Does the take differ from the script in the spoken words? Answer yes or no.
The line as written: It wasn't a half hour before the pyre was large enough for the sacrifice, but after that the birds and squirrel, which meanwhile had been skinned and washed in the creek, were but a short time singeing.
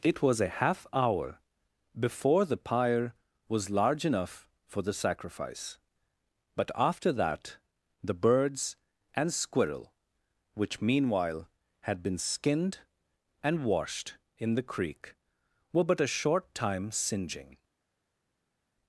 yes